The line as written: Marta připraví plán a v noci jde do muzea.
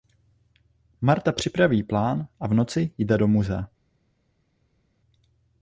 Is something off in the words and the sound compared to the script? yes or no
no